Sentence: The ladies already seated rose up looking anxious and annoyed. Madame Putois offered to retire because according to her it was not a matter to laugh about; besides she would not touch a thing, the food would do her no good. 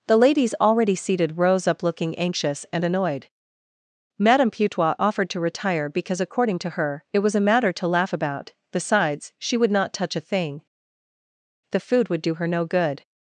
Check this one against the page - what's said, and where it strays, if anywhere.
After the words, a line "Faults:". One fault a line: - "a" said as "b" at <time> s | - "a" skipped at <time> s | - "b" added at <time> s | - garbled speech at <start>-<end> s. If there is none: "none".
The ladies already seated rose up looking anxious and annoyed. Madame Putois offered to retire because according to her it was a matter to laugh about; besides she would not touch a thing, the food would do her no good.
Faults:
- "not" skipped at 7.3 s